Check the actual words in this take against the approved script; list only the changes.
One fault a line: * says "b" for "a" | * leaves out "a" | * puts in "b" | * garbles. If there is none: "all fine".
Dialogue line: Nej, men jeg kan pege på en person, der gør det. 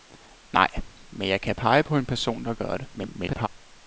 * garbles